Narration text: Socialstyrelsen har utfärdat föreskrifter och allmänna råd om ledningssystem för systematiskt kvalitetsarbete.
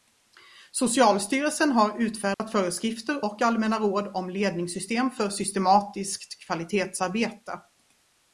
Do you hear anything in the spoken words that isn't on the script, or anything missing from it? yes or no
no